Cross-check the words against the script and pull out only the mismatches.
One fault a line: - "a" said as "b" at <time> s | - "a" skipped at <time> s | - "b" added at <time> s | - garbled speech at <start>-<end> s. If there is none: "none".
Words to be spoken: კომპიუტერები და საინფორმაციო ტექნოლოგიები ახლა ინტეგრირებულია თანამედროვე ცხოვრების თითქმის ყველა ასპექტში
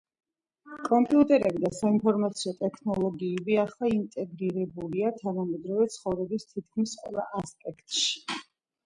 none